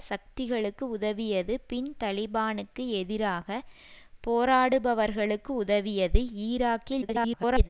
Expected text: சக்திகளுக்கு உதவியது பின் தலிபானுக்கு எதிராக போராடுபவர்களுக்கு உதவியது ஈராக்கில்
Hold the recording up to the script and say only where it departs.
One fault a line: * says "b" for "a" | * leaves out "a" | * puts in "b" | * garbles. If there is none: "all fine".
* garbles